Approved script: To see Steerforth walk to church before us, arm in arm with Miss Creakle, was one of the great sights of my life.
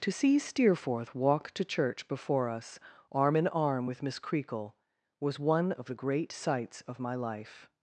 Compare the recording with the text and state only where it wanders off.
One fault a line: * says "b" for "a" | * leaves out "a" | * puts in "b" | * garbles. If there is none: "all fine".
all fine